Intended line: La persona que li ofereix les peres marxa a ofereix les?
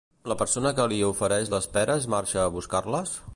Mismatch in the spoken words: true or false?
true